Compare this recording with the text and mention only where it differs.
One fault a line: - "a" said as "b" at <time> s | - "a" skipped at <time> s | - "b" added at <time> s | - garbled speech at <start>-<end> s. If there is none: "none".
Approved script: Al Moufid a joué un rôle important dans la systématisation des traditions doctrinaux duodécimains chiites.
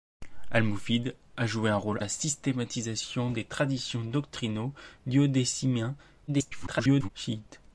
- "important dans" skipped at 2.0 s
- garbled speech at 6.3-7.1 s